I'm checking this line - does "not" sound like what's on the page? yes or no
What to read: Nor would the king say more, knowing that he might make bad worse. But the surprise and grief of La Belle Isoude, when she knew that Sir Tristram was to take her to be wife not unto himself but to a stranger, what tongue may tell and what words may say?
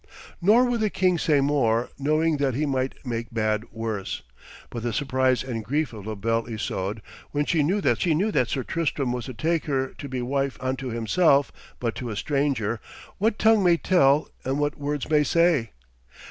no